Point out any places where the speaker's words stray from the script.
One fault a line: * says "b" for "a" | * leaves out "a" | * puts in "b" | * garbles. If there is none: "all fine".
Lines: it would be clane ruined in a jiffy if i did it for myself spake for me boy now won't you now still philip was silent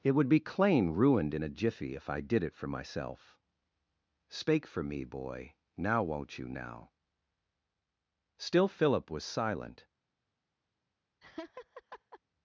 all fine